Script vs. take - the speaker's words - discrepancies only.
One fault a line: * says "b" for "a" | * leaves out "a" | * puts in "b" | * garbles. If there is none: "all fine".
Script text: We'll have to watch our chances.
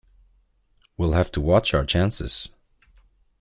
all fine